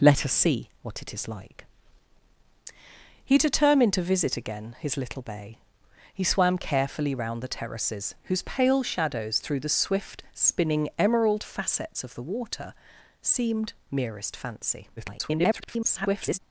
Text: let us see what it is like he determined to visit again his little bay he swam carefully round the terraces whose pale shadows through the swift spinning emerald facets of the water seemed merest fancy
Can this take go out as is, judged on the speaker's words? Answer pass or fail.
fail